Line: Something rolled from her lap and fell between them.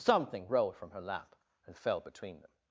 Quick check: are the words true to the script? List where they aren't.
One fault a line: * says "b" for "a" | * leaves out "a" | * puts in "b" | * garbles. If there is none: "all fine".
all fine